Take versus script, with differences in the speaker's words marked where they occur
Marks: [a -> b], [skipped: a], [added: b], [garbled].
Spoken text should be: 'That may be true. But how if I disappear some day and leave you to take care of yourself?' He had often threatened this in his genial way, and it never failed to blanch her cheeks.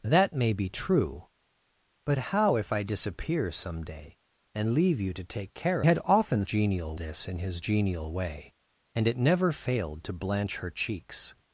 'That may be true. But how if I disappear some day and leave you to take care [skipped: of yourself?' He] had often [threatened -> genial] this in his genial way, and it never failed to blanch her cheeks.